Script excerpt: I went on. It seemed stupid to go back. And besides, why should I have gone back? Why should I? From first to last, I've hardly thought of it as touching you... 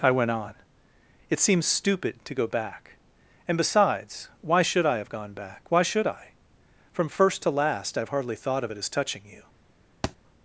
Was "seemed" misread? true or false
true